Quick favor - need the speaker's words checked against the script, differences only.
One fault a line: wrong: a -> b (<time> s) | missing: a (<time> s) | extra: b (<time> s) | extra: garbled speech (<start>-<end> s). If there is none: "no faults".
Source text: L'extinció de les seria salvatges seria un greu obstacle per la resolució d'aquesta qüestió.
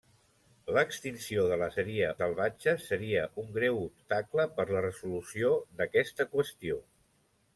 no faults